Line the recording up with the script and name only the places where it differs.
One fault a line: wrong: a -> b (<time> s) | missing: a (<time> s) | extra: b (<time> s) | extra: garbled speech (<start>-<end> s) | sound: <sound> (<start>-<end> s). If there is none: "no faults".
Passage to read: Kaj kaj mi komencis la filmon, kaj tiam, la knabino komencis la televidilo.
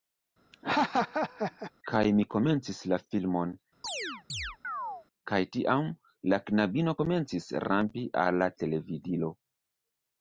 sound: laugh (0.5-1.7 s)
missing: kaj (2.0 s)
sound: chirp (3.8-5.1 s)
extra: rampi al (7.7 s)